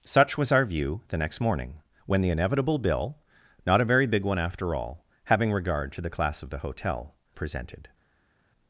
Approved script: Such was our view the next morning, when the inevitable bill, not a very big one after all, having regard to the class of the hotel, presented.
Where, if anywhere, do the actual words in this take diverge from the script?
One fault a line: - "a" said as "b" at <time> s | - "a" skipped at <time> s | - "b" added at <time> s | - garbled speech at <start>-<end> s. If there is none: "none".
none